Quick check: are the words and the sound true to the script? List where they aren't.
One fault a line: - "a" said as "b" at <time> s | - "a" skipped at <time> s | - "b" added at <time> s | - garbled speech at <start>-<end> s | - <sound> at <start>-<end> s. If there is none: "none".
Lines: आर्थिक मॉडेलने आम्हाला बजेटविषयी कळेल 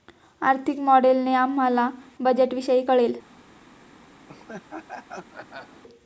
- laugh at 4.3-5.8 s